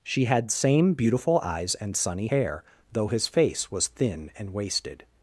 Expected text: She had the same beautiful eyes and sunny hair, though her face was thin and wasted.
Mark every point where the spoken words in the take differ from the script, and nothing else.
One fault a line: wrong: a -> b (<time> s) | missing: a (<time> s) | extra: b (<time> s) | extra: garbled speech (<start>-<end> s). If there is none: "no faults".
missing: the (0.5 s)
wrong: her -> his (3.1 s)